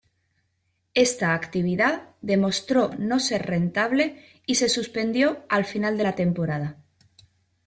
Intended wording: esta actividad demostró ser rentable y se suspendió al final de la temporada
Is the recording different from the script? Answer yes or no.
yes